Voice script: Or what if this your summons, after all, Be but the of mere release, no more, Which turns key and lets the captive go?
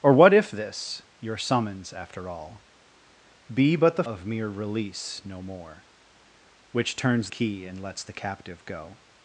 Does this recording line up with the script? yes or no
yes